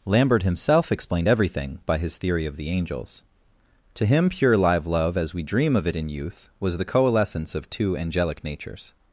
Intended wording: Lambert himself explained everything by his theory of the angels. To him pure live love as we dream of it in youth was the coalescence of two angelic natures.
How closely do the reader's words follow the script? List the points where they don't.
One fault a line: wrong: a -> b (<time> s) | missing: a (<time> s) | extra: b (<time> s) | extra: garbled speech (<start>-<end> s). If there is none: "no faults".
no faults